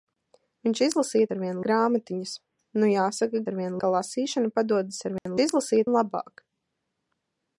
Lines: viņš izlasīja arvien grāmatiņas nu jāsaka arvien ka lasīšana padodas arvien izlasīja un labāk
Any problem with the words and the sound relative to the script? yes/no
yes